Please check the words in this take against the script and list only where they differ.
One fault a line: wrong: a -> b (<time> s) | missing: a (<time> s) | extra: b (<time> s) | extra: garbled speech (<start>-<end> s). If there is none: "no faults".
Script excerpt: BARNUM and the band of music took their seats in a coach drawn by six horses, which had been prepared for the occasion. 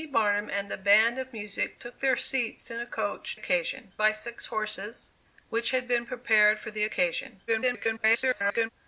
wrong: drawn -> occasion (3.3 s)
extra: garbled speech (7.5-8.7 s)